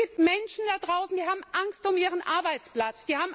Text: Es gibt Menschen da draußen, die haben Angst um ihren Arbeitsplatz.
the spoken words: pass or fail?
pass